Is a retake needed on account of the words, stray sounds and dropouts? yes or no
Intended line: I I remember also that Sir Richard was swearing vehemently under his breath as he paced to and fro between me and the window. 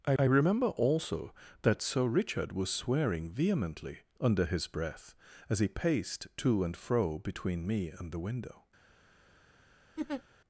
yes